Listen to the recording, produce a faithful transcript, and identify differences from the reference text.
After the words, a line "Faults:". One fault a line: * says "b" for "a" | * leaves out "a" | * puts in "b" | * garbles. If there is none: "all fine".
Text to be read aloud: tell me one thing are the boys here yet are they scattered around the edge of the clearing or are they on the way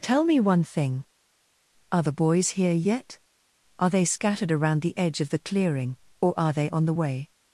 tell me one thing are the boys here yet are they scattered around the edge of the clearing or are they on the way
Faults:
all fine